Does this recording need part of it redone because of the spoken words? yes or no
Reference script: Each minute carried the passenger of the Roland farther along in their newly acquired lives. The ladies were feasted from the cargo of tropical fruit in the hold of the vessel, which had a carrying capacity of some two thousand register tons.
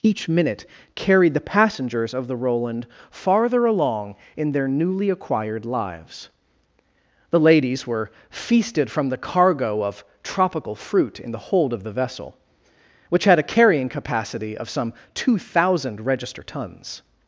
yes